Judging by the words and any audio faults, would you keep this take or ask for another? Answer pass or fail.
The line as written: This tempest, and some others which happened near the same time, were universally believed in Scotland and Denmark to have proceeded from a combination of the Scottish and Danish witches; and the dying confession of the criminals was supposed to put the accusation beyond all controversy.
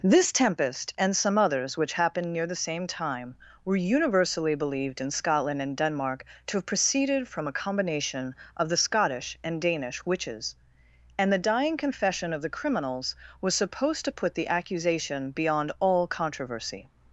pass